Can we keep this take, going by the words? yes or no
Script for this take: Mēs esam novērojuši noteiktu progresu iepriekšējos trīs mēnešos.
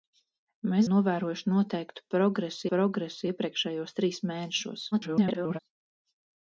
no